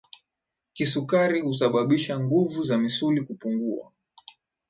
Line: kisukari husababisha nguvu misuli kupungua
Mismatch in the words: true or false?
true